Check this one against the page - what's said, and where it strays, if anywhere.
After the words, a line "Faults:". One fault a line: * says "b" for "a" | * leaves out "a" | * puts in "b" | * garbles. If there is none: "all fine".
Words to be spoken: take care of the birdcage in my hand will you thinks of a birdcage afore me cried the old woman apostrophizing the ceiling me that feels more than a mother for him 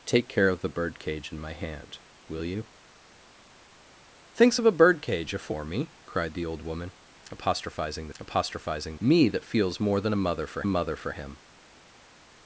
take care of the birdcage in my hand will you thinks of a birdcage afore me cried the old woman apostrophizing the apostrophizing me that feels more than a mother for a mother for him
Faults:
* says "apostrophizing" for "ceiling"
* puts in "a mother for"